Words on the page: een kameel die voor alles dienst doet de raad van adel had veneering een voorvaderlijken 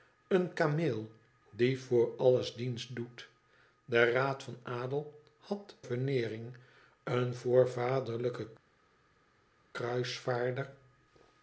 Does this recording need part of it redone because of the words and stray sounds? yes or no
no